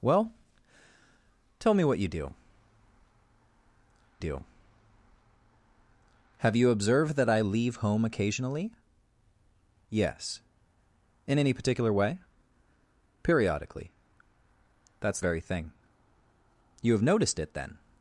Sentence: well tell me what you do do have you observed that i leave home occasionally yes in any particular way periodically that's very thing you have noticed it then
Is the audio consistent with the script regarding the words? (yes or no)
yes